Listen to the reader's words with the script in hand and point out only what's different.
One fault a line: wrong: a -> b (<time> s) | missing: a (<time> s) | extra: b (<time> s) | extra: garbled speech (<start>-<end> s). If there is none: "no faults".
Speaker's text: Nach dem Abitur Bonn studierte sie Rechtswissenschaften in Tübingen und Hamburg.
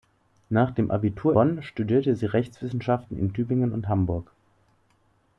no faults